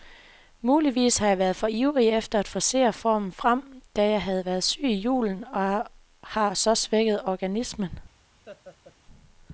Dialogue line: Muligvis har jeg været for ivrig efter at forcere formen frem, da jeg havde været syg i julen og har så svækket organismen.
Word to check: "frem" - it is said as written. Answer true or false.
true